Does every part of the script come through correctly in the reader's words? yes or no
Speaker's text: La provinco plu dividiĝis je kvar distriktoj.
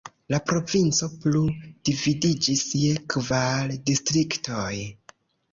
yes